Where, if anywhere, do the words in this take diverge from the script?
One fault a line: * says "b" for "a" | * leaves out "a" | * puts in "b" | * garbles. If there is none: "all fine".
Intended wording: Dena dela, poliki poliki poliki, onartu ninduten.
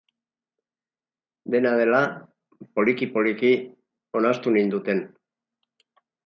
* leaves out "poliki"